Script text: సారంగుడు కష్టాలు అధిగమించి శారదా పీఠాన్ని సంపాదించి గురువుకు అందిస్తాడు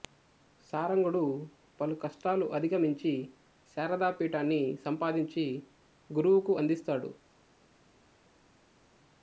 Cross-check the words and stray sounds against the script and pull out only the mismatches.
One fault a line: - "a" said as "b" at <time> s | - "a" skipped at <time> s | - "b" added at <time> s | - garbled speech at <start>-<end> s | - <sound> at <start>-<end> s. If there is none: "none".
- "పలు" added at 1.8 s